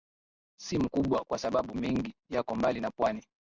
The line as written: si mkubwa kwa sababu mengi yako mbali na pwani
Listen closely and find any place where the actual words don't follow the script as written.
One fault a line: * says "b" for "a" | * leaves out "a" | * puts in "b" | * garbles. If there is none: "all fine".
all fine